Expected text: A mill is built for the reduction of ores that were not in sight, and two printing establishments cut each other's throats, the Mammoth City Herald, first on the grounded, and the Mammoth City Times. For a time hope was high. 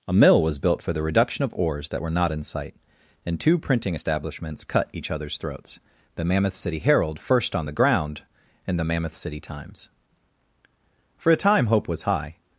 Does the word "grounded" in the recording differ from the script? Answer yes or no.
yes